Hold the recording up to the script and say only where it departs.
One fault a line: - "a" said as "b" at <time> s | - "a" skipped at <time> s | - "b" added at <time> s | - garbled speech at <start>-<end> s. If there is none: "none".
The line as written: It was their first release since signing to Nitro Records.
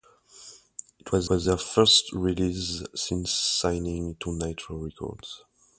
- "was" added at 1.3 s